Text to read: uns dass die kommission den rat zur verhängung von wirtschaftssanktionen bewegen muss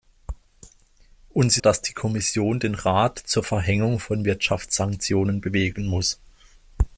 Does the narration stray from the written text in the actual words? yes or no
no